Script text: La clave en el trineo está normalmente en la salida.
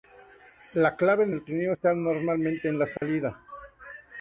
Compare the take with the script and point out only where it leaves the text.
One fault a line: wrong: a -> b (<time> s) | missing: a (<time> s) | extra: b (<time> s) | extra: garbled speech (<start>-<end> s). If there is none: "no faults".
no faults